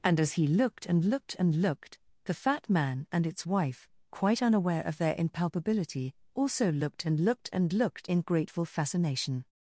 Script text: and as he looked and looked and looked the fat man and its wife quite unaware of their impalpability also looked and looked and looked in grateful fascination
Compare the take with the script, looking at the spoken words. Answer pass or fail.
pass